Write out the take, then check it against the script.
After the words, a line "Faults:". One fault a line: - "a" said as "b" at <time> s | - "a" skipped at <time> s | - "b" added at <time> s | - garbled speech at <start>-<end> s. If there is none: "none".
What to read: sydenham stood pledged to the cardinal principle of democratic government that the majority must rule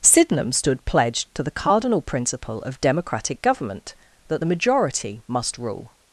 sydenham stood pledged to the cardinal principle of democratic government that the majority must rule
Faults:
none